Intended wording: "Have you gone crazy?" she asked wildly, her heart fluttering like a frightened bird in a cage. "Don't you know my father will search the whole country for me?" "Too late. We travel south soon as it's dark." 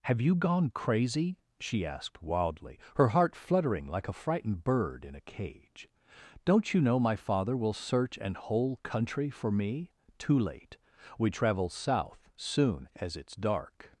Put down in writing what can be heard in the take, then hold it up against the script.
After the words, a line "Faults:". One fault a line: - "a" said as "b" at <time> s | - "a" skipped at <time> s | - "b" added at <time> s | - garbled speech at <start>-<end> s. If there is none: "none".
"Have you gone crazy?" she asked wildly, her heart fluttering like a frightened bird in a cage. "Don't you know my father will search an whole country for me?" "Too late. We travel south soon as it's dark."
Faults:
- "the" said as "an" at 8.2 s